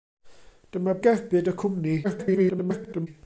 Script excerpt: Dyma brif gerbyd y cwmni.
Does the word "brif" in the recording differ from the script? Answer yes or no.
yes